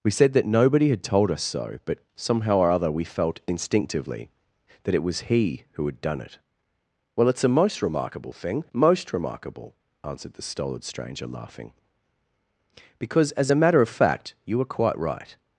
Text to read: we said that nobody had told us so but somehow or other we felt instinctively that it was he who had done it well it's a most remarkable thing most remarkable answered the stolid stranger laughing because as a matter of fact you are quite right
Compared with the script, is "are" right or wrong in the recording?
wrong